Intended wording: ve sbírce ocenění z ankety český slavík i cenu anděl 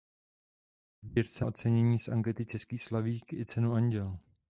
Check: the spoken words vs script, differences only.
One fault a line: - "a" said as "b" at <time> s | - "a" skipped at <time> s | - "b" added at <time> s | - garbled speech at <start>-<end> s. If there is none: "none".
none